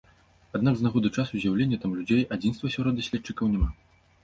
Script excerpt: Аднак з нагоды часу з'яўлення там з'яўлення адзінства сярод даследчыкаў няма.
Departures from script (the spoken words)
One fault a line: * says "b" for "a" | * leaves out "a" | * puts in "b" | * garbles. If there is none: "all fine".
* says "людзей" for "з'яўлення"